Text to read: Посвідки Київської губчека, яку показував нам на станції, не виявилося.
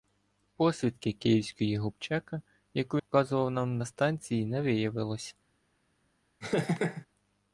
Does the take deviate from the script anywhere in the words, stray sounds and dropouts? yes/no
yes